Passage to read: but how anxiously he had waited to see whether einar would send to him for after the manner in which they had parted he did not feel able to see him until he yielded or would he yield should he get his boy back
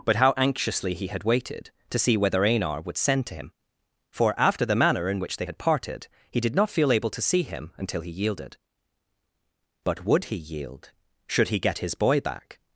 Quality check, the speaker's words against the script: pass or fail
fail